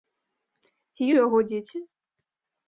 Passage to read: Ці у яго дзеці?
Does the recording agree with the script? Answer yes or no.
yes